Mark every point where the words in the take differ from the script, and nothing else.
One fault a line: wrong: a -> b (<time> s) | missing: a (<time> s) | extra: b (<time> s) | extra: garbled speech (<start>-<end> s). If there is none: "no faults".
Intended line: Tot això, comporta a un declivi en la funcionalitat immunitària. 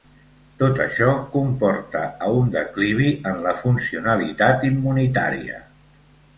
no faults